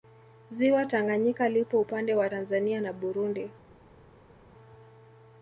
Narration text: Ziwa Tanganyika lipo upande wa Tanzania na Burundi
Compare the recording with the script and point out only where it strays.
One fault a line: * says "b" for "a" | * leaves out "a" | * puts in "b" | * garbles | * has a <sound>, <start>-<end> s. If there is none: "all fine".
all fine